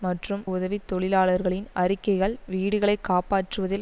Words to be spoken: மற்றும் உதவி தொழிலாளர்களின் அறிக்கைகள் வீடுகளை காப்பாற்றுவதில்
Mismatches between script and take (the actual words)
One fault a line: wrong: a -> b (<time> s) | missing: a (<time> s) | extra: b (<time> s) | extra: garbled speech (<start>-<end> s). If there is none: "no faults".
no faults